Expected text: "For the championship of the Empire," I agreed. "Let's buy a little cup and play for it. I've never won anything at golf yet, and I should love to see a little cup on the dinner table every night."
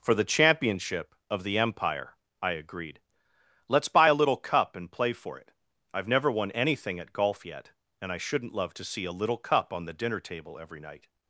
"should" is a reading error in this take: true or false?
true